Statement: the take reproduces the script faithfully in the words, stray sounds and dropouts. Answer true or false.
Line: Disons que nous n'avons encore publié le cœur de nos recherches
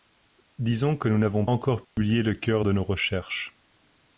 false